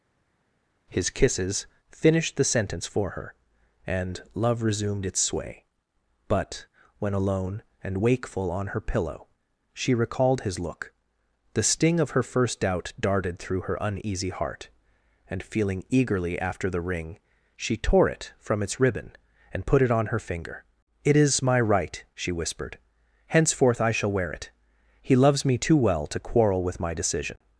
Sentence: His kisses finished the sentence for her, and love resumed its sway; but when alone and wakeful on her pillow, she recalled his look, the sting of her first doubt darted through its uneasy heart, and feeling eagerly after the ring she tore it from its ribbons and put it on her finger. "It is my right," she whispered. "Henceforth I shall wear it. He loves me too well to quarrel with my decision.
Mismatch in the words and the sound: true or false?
true